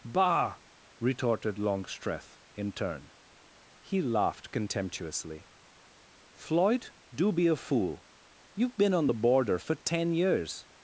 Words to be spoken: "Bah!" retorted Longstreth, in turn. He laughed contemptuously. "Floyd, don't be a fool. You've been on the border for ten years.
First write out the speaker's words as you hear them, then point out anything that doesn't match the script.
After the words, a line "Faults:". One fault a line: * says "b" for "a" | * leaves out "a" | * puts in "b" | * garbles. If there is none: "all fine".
"Bah!" retorted Longstreth, in turn. He laughed contemptuously. "Floyd, do be a fool. You've been on the border for ten years.
Faults:
* says "do" for "don't"